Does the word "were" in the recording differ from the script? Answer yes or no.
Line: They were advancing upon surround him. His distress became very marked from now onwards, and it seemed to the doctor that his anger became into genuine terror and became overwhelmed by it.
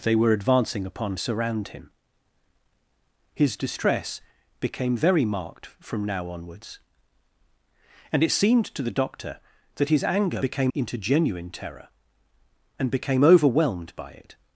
no